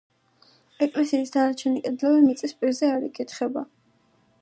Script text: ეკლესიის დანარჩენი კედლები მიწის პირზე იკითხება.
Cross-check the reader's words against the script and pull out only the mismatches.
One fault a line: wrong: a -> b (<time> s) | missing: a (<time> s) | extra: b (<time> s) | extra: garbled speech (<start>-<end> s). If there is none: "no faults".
extra: არ (3.0 s)